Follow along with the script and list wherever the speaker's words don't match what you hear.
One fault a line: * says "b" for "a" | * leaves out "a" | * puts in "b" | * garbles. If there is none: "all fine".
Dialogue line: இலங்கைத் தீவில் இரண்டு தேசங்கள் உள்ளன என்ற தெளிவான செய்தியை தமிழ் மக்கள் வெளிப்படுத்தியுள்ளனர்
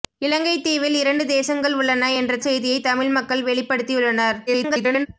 * leaves out "தெளிவான"
* garbles